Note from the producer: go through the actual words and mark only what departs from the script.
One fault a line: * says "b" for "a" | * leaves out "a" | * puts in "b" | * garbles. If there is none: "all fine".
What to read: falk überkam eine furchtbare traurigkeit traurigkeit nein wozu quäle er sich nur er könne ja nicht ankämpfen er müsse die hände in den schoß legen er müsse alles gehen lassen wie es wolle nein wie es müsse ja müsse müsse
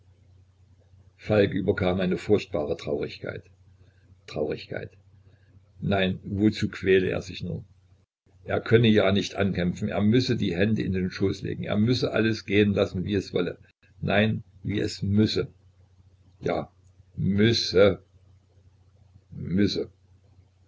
all fine